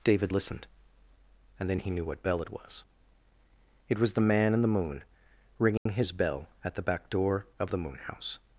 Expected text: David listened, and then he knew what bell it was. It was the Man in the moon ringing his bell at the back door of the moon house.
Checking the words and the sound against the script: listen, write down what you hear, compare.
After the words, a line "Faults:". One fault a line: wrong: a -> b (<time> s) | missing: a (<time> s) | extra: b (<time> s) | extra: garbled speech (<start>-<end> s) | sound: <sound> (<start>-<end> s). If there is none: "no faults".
David listened, and then he knew what bell it was. It was the Man in the moon ringing his bell at the back door of the moon house.
Faults:
sound: dropout (5.8-5.9 s)